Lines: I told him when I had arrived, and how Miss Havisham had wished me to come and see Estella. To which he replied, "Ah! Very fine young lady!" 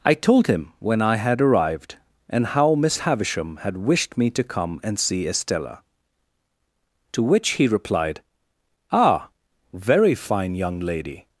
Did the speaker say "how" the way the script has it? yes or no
yes